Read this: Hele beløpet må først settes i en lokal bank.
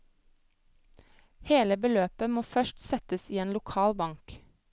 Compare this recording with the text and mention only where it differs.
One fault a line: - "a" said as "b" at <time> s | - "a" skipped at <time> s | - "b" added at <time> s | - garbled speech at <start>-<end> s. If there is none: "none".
none